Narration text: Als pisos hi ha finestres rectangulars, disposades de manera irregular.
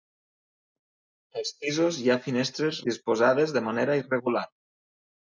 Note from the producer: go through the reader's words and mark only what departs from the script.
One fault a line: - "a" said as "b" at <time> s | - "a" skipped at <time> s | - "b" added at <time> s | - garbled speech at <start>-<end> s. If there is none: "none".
- "rectangulars" skipped at 2.8 s